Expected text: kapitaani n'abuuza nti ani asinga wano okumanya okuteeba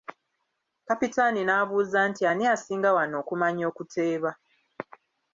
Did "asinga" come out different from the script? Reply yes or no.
no